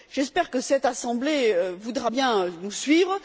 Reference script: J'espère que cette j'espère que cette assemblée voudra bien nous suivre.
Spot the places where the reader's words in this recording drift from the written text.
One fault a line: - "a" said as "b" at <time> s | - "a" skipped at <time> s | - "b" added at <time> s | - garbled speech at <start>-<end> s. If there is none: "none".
- "j'espère que cette" skipped at 0.8 s